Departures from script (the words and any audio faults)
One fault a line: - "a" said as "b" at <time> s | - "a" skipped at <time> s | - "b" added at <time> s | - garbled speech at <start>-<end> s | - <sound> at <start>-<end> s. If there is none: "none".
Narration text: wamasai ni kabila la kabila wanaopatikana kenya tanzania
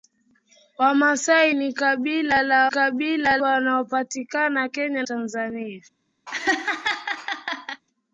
- laugh at 6.3-7.8 s